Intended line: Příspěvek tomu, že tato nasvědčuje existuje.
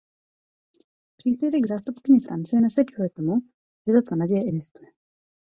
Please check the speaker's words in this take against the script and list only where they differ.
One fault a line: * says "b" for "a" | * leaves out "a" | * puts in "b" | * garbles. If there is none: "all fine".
* puts in "zástupkyně Francie nasvědčuje"
* says "naděje" for "nasvědčuje"